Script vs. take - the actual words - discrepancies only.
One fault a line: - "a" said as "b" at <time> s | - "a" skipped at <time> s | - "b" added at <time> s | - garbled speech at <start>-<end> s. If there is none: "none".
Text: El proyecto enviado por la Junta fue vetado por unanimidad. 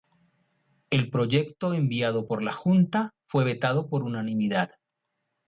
none